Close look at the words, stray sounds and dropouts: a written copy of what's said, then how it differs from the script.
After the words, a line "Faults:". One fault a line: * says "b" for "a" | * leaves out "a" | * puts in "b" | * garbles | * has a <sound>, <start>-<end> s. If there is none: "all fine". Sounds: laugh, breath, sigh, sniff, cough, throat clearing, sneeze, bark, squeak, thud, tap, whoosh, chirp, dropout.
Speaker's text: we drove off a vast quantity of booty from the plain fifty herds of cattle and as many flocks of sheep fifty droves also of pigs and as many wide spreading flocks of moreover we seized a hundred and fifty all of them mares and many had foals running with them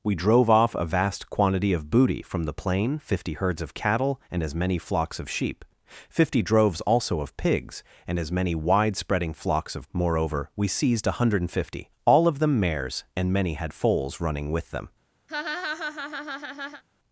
we drove off a vast quantity of booty from the plain fifty herds of cattle and as many flocks of sheep fifty droves also of pigs and as many wide spreading flocks of moreover we seized a hundred and fifty all of them mares and many had foals running with them
Faults:
* has a laugh, 15.3-16.8 s